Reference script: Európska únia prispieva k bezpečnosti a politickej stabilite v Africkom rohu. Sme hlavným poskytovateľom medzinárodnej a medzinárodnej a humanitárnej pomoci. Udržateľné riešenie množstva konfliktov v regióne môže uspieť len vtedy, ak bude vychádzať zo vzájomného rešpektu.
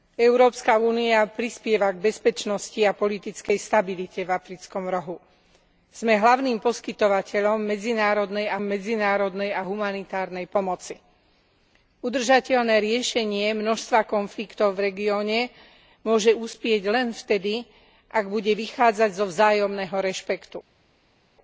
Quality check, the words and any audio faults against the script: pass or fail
pass